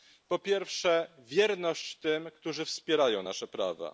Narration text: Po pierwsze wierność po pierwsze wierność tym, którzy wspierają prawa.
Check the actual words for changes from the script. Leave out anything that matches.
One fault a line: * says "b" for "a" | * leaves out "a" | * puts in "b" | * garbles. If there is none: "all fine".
* leaves out "po pierwsze wierność"
* puts in "nasze"